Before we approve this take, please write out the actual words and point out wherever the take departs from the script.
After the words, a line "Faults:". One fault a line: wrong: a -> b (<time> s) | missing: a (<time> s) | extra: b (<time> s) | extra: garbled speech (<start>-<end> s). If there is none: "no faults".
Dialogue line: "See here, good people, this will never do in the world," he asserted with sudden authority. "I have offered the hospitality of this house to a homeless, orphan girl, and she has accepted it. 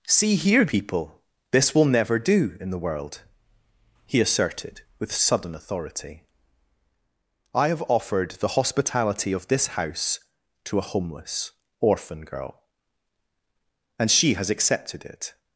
"See here, people, this will never do in the world," he asserted with sudden authority. "I have offered the hospitality of this house to a homeless, orphan girl, and she has accepted it.
Faults:
missing: good (0.7 s)